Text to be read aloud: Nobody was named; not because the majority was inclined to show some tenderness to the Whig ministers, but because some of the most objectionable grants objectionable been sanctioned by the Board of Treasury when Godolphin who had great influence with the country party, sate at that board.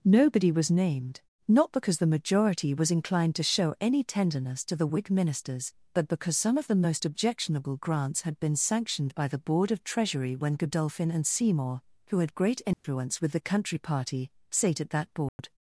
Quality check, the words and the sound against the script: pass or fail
fail